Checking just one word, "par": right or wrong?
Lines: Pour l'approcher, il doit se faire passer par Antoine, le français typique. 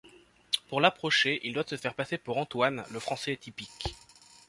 wrong